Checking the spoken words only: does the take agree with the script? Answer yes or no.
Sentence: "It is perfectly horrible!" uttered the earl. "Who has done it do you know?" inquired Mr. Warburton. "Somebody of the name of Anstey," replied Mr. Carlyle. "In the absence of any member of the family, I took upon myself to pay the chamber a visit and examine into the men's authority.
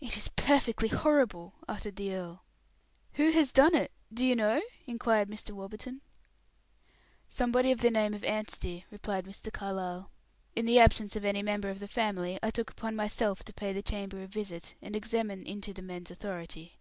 yes